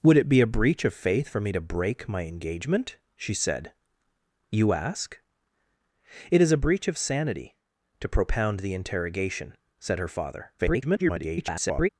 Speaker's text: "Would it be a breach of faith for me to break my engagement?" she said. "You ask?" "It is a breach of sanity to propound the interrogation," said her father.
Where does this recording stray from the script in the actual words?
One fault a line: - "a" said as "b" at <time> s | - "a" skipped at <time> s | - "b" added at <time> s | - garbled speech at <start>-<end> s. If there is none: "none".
- garbled speech at 10.6-11.9 s